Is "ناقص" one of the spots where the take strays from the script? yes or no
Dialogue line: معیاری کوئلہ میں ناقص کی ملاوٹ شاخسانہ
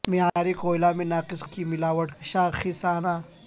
no